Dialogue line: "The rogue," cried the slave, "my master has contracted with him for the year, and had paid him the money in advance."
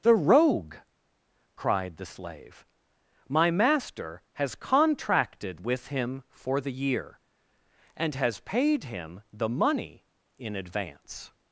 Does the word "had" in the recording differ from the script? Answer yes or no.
yes